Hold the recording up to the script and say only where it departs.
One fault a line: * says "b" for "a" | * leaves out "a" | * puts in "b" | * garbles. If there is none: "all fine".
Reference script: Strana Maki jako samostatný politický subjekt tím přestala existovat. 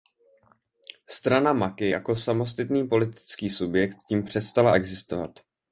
all fine